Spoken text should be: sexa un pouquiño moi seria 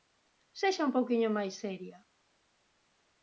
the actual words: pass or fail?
fail